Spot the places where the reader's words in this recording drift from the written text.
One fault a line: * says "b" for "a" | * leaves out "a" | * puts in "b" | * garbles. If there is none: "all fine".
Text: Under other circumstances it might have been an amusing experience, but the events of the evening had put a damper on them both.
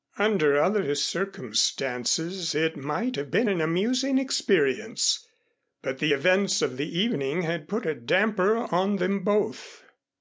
all fine